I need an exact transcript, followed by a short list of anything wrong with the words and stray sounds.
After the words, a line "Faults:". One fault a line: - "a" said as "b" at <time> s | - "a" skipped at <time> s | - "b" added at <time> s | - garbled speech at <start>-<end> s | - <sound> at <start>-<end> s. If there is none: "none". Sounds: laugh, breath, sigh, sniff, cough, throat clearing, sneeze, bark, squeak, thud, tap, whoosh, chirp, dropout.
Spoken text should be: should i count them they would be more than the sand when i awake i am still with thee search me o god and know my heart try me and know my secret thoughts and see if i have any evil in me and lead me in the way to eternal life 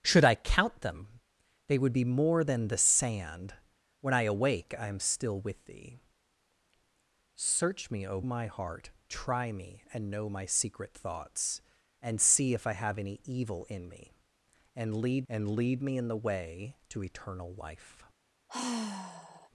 should i count them they would be more than the sand when i awake i am still with thee search me o my heart try me and know my secret thoughts and see if i have any evil in me and lead and lead me in the way to eternal life
Faults:
- "god and know" skipped at 8.2 s
- "and lead" added at 15.3 s
- sigh at 18.5-19.5 s